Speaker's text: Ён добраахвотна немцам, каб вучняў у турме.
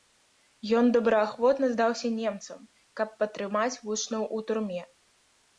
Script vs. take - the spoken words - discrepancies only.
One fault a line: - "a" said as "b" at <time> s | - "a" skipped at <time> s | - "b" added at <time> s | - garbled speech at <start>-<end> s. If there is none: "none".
- "здаўся" added at 1.7 s
- "падтрымаць" added at 3.3 s